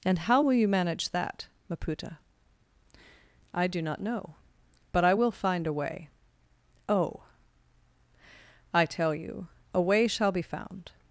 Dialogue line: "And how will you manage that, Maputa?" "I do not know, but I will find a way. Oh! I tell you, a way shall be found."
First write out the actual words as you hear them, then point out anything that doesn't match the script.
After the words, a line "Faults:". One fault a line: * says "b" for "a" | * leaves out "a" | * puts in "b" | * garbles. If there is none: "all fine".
"And how will you manage that, Maputa?" "I do not know, but I will find a way. Oh! I tell you, a way shall be found."
Faults:
all fine